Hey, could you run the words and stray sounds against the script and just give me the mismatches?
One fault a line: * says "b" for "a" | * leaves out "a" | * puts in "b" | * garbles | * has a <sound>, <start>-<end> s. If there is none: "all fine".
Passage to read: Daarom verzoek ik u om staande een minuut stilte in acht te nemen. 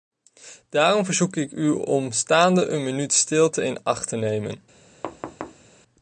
* has a thud, 5.0-5.7 s